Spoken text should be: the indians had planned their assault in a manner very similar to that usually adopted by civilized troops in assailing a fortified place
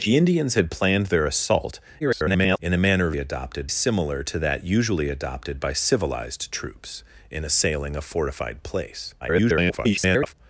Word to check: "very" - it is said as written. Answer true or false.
false